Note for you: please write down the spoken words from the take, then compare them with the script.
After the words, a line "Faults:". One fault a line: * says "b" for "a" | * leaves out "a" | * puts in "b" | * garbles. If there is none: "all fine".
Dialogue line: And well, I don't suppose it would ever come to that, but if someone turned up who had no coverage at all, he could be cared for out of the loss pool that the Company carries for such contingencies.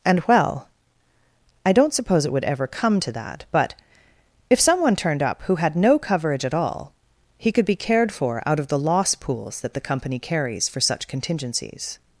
And well, I don't suppose it would ever come to that, but if someone turned up who had no coverage at all, he could be cared for out of the loss pools that the Company carries for such contingencies.
Faults:
* says "pools" for "pool"